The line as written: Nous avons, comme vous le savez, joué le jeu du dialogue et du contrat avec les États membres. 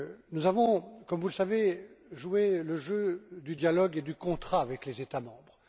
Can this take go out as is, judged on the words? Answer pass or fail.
pass